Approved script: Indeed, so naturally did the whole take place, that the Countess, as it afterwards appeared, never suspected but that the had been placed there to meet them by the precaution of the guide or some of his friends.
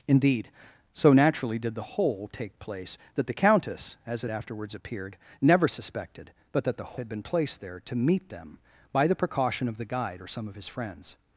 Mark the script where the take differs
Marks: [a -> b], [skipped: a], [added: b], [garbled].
Indeed, so naturally did the whole take place, that the Countess, as it afterwards appeared, never suspected but that the had been placed there to meet them by the precaution of the guide or some of his friends.